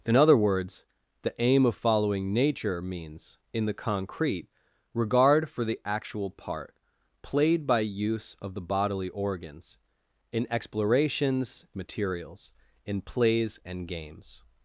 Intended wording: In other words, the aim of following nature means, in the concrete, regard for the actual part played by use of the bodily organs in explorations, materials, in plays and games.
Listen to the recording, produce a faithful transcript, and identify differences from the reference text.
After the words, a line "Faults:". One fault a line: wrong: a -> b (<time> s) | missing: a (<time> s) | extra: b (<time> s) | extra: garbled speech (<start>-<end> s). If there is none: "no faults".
In other words, the aim of following nature means, in the concrete, regard for the actual part played by use of the bodily organs in explorations, materials, in plays and games.
Faults:
no faults